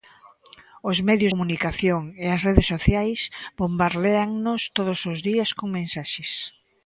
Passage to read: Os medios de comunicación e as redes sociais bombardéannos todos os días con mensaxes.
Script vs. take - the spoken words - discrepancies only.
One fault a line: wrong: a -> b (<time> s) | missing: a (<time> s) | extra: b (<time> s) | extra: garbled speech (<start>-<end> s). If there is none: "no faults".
missing: de (1.3 s)